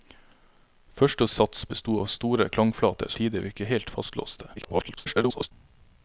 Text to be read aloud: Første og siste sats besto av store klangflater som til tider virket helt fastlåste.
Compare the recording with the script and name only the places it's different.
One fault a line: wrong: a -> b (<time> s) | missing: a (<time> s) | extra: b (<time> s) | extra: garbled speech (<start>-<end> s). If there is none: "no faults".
missing: siste (1.3 s)
missing: som til (3.1 s)
extra: garbled speech (4.6-5.5 s)